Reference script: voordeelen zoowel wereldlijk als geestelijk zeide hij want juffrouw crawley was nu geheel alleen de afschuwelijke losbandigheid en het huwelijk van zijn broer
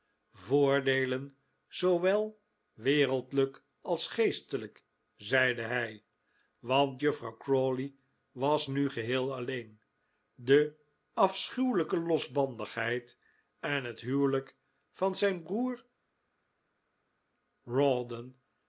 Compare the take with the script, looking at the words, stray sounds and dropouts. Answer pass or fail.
pass